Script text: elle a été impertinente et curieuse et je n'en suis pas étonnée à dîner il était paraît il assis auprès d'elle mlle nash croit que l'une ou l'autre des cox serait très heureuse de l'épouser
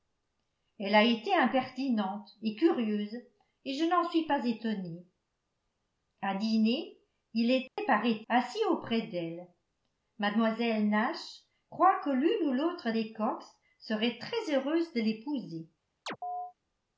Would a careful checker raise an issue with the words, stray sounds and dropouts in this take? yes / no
yes